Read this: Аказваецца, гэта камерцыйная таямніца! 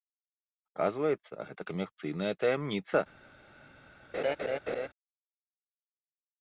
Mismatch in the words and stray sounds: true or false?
true